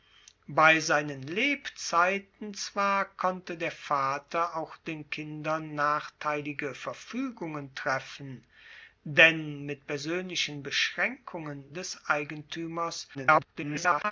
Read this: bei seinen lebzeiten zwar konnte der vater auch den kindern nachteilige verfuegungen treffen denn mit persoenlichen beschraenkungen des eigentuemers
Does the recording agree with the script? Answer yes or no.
no